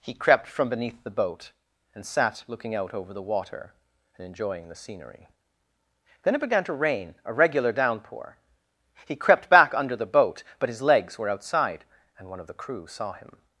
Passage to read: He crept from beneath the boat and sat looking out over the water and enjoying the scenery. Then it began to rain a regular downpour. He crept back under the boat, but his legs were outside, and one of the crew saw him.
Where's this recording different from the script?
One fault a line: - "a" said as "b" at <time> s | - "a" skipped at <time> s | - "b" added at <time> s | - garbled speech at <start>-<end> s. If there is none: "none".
none